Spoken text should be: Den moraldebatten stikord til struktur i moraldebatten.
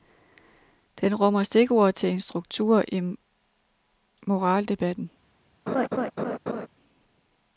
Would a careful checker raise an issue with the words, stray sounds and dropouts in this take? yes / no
yes